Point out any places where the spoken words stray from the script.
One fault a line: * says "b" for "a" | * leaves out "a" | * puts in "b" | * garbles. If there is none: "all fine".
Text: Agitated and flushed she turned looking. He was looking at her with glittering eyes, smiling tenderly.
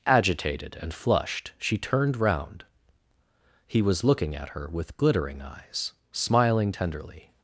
* says "round" for "looking"